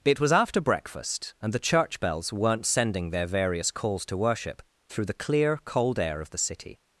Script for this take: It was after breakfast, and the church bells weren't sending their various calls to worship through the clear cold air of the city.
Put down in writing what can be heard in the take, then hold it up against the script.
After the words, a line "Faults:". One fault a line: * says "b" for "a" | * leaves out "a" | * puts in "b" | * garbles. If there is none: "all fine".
It was after breakfast, and the church bells weren't sending their various calls to worship through the clear cold air of the city.
Faults:
all fine